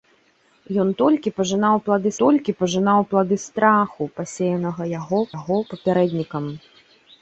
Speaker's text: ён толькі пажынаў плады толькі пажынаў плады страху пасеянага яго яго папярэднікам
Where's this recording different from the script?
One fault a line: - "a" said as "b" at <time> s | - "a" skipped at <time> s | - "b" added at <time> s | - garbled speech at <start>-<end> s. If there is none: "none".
none